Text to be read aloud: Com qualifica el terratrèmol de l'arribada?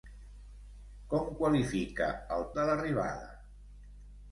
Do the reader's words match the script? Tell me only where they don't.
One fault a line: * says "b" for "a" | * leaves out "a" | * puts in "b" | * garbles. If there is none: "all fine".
* leaves out "terratrèmol"